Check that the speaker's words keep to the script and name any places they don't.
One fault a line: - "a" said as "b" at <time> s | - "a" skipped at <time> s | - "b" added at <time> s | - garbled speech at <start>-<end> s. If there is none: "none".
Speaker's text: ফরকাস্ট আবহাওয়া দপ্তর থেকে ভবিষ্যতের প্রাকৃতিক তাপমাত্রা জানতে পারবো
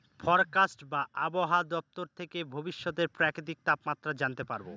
- "বা" added at 0.8 s